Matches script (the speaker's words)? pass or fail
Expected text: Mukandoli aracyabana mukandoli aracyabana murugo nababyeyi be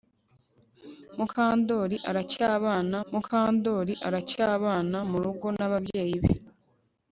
pass